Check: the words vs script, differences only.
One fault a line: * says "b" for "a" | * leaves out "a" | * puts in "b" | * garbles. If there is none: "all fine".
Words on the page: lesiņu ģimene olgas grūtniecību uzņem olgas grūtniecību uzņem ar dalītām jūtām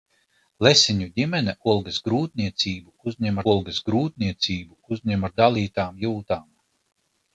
all fine